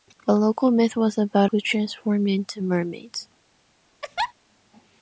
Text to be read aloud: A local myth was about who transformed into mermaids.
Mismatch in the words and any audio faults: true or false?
true